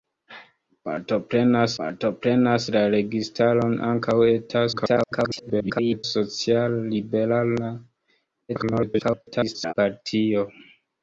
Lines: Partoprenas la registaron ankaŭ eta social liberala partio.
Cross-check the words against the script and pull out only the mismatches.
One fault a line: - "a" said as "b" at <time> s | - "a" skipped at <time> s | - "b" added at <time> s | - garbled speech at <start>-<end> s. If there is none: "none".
- "partoprenas" added at 1.8 s
- garbled speech at 4.7-6.0 s
- garbled speech at 8.5-9.7 s